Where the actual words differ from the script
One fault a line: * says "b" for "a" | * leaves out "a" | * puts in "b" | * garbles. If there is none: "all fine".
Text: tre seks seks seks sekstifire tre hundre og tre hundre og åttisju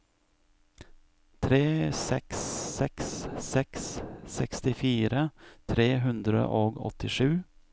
* leaves out "tre hundre og"